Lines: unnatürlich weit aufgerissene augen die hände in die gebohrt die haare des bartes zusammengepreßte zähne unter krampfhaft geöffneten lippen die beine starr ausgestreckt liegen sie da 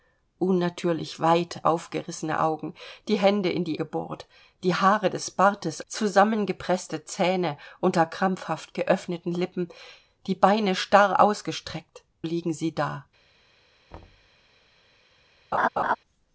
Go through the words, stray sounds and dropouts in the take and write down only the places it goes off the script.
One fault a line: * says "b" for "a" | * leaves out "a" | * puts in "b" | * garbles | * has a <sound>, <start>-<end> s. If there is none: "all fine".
* has a thud, 13.9-14.3 s
* has a laugh, 15.5-16.0 s